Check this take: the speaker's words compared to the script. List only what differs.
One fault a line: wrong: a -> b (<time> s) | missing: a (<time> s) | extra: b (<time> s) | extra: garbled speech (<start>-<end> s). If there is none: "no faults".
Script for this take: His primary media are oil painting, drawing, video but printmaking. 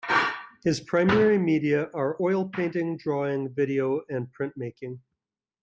wrong: but -> and (4.1 s)